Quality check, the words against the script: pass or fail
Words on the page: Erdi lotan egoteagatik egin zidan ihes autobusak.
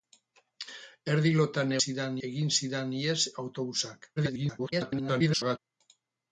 fail